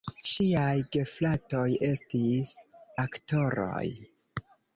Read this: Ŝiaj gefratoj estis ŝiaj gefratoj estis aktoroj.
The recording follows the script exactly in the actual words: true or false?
false